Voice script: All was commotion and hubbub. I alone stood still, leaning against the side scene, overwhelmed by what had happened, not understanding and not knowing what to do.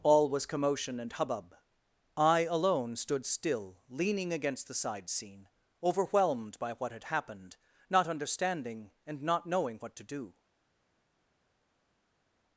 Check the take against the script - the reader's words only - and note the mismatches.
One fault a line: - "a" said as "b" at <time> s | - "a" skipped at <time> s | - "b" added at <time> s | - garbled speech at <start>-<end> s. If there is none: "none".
none